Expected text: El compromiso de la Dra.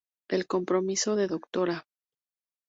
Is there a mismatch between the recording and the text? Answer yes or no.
yes